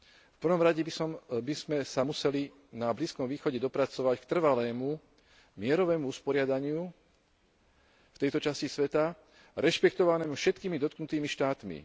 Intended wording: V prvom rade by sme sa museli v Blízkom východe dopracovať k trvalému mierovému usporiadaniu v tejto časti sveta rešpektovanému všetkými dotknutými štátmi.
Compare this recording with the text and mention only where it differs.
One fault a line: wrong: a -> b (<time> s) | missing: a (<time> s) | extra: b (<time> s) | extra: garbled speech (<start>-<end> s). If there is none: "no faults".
wrong: v -> na (2.7 s)